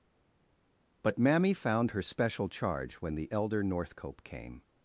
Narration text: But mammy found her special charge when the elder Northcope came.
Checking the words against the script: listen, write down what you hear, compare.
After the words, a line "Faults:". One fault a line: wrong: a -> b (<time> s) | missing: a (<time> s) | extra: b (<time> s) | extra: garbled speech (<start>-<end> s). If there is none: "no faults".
But mammy found her special charge when the elder Northcope came.
Faults:
no faults